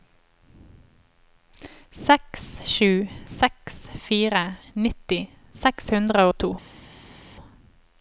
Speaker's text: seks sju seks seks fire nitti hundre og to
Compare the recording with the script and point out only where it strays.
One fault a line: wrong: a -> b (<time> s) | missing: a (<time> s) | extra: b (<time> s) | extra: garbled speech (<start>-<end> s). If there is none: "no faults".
missing: seks (3.8 s)
extra: seks (5.6 s)